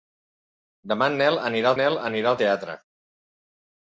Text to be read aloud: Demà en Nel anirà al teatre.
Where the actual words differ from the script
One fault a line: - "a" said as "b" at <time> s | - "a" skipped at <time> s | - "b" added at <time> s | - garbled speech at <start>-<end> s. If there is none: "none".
- "Nel anirà" added at 1.8 s